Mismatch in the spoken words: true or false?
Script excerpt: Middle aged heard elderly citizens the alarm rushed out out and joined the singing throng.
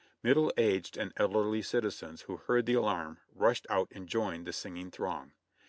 true